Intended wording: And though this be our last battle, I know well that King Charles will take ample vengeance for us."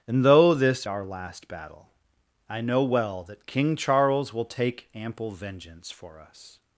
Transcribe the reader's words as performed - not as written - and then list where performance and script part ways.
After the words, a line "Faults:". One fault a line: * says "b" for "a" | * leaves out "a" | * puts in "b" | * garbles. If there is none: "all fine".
And though this our last battle, I know well that King Charles will take ample vengeance for us."
Faults:
* leaves out "be"